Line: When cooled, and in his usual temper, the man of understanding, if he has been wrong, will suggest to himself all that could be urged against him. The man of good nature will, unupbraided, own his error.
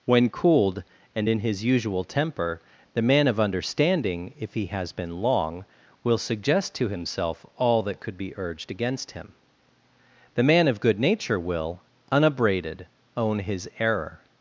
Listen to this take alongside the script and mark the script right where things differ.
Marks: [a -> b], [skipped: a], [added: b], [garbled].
When cooled, and in his usual temper, the man of understanding, if he has been [wrong, -> long] will suggest to himself all that could be urged against him. The man of good nature will, unupbraided, own his error.